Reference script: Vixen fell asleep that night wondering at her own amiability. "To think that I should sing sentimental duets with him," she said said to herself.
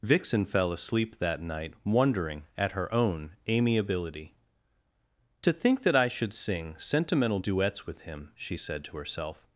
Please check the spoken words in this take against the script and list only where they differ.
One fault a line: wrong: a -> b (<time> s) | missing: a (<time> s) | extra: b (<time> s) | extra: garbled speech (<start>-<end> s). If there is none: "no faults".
missing: said (8.8 s)